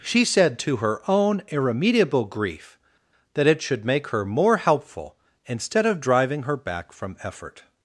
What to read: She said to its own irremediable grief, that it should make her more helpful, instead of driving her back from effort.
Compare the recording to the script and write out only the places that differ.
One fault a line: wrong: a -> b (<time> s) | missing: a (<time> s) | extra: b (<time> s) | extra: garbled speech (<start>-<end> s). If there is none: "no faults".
wrong: its -> her (0.8 s)